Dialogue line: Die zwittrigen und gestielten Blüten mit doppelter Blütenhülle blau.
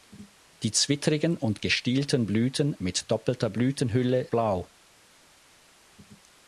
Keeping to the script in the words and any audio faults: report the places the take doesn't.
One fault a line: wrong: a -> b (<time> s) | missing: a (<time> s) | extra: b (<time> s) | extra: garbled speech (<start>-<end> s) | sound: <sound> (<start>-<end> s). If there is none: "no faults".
no faults